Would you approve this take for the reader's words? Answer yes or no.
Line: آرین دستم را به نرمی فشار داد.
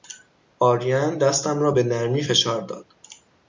yes